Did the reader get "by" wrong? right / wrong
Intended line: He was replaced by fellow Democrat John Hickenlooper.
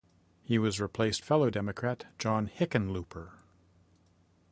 wrong